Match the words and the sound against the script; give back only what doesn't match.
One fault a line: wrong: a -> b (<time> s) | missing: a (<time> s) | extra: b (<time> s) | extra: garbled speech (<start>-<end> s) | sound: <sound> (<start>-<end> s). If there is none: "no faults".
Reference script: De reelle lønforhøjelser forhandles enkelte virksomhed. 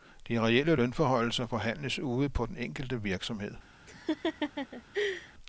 extra: ude på den (2.0 s)
sound: laugh (3.9-5.3 s)